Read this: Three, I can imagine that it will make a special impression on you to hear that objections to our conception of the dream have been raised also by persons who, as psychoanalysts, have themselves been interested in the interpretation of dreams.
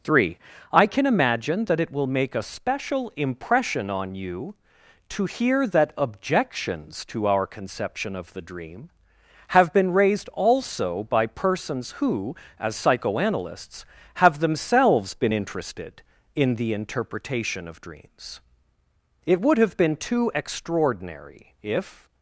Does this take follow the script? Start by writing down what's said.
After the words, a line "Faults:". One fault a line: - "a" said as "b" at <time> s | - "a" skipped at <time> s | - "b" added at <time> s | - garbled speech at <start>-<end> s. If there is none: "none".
Three, I can imagine that it will make a special impression on you to hear that objections to our conception of the dream have been raised also by persons who, as psychoanalysts, have themselves been interested in the interpretation of dreams. It would have been too extraordinary if.
Faults:
- "It would have been too extraordinary if" added at 19.3 s